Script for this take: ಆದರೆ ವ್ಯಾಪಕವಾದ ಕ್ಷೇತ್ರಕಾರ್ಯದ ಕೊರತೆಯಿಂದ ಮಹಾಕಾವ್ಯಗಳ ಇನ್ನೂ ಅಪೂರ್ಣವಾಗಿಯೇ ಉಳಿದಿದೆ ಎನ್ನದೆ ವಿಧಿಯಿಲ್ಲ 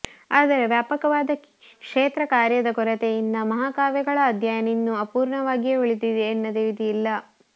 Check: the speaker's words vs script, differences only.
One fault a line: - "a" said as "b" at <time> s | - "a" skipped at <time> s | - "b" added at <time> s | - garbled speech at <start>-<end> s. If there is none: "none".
- "ಅಧ್ಯಯನ" added at 4.3 s